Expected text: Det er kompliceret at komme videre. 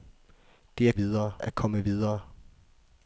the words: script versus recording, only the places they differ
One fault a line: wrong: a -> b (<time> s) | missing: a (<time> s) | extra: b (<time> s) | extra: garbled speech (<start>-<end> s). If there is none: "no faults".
wrong: kompliceret -> videre (0.9 s)